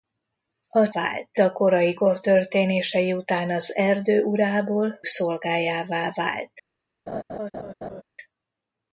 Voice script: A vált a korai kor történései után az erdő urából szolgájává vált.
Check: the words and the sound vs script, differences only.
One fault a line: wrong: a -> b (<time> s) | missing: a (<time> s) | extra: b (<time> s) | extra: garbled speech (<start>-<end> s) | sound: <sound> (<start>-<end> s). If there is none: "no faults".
sound: laugh (7.1-8.0 s)